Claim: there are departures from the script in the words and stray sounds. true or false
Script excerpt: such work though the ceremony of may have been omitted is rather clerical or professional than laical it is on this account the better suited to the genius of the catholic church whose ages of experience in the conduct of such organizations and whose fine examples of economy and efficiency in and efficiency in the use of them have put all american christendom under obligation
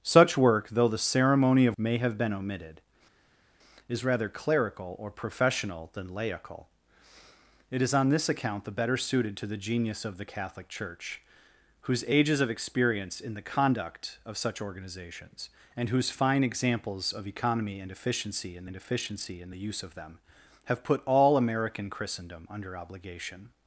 false